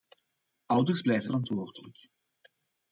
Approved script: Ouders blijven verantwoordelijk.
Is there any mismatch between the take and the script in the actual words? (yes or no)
no